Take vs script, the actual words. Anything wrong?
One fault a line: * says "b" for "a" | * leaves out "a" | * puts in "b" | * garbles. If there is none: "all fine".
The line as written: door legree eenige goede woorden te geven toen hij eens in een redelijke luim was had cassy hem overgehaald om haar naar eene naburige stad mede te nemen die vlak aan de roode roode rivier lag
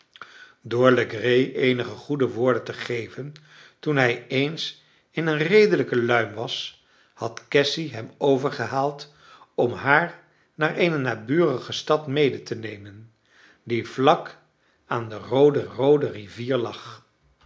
all fine